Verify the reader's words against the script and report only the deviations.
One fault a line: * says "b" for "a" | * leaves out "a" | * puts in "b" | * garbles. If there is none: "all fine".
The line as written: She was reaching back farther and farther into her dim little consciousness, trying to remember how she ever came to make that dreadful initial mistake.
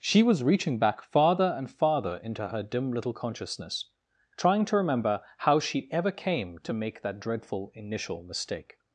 all fine